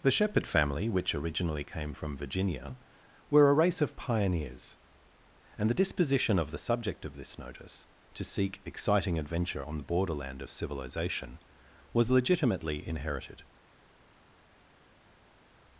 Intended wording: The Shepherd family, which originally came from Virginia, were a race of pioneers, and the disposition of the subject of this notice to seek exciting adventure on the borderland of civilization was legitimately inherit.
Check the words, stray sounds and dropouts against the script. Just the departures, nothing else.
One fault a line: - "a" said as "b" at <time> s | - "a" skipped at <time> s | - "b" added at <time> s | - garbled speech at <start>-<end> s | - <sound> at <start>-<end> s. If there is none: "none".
- "inherit" said as "inherited" at 12.9 s